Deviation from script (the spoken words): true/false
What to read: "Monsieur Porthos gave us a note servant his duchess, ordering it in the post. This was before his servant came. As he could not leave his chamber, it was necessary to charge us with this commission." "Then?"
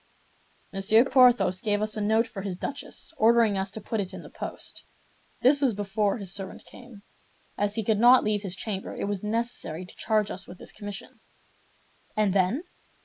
true